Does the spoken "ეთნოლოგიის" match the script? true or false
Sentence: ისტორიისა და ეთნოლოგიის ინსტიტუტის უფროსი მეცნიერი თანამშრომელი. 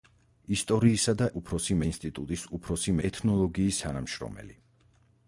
false